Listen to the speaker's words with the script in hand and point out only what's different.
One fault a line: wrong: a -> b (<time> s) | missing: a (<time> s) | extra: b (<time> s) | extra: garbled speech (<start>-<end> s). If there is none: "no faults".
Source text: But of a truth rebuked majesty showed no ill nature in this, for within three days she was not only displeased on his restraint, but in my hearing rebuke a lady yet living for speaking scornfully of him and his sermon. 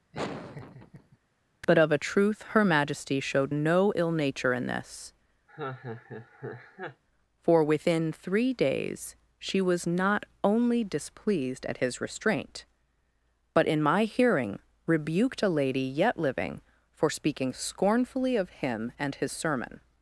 wrong: rebuked -> her (2.5 s)
wrong: on -> at (11.7 s)
wrong: rebuke -> rebuked (14.9 s)